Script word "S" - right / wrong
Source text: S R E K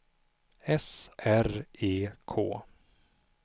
right